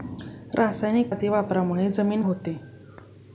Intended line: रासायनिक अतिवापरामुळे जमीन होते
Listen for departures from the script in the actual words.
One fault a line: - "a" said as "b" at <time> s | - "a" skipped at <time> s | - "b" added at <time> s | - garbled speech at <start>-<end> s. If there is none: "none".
none